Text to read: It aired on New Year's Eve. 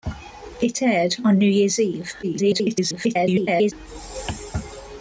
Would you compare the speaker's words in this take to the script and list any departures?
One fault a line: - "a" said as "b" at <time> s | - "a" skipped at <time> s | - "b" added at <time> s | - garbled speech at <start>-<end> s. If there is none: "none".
- garbled speech at 2.2-3.7 s